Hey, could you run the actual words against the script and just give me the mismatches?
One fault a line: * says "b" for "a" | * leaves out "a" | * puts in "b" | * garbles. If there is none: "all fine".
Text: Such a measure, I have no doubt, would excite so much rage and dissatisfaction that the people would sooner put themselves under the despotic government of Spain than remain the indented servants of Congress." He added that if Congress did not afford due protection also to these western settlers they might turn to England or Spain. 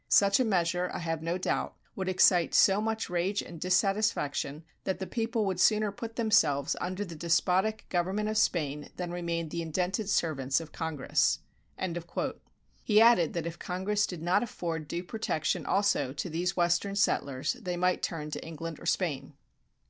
all fine